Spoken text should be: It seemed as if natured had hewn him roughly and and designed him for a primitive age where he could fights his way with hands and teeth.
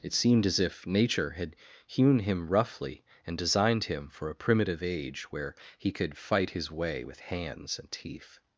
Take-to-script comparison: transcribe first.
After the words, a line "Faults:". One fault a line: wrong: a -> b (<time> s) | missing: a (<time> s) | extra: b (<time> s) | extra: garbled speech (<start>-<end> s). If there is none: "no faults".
It seemed as if nature had hewn him roughly and designed him for a primitive age where he could fight his way with hands and teeth.
Faults:
wrong: natured -> nature (0.9 s)
missing: and (3.4 s)
wrong: fights -> fight (6.2 s)